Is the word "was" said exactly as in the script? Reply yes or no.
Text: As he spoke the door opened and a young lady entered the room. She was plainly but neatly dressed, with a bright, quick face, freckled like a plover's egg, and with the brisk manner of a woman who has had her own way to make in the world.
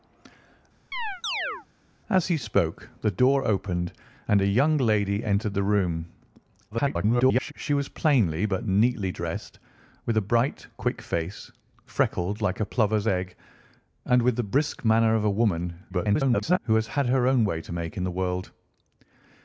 yes